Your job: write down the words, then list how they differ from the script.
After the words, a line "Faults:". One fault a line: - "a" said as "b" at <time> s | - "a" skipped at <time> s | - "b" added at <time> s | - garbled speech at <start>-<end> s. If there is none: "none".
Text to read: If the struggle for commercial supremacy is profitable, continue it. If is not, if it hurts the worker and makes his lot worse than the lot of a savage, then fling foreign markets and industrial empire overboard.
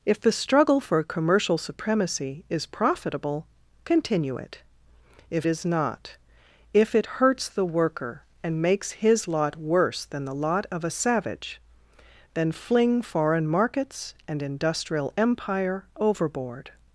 If the struggle for commercial supremacy is profitable, continue it. If is not, if it hurts the worker and makes his lot worse than the lot of a savage, then fling foreign markets and industrial empire overboard.
Faults:
none